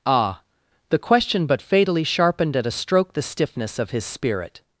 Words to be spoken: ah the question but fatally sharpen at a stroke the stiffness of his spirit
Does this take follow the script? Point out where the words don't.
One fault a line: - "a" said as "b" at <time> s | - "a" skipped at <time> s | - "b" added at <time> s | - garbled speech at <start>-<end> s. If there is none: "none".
- "sharpen" said as "sharpened" at 2.0 s